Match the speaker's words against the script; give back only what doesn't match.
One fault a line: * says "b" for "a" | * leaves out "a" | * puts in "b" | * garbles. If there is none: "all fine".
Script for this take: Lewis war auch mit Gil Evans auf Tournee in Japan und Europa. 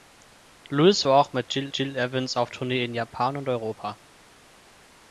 * puts in "Gil"